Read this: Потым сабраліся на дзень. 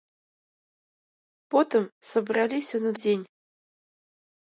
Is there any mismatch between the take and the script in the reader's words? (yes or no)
no